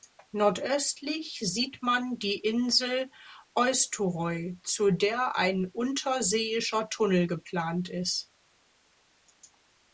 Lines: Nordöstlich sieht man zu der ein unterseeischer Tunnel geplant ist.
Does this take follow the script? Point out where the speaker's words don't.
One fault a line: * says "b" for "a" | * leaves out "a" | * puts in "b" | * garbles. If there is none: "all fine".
* puts in "die Insel Eysturoy"